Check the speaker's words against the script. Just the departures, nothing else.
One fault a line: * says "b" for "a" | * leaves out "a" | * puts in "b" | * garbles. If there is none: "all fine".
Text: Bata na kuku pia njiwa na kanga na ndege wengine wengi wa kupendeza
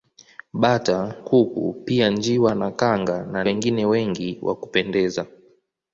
* leaves out "na"
* leaves out "ndege"